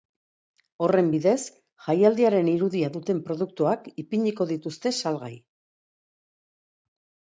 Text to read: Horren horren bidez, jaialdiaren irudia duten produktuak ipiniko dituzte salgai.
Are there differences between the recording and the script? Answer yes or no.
yes